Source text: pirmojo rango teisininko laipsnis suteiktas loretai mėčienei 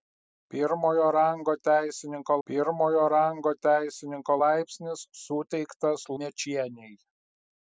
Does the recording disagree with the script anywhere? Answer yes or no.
yes